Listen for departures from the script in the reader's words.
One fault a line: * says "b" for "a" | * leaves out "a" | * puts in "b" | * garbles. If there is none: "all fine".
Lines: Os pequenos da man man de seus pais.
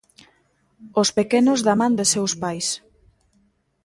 * leaves out "man"